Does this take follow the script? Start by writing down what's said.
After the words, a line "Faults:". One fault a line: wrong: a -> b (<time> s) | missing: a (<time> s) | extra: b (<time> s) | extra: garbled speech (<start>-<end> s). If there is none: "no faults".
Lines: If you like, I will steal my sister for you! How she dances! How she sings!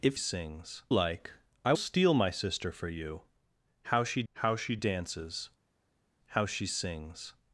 If sings like, I steal my sister for you! How she how she dances! How she sings!
Faults:
wrong: you -> sings (0.1 s)
missing: will (1.7 s)
extra: how she (4.3 s)